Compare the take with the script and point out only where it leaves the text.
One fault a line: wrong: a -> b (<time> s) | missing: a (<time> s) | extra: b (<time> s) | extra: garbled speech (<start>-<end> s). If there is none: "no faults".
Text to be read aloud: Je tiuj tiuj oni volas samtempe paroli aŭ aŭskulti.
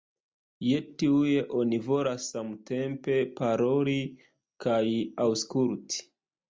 missing: tiuj (1.3 s)
wrong: aŭ -> kaj (4.7 s)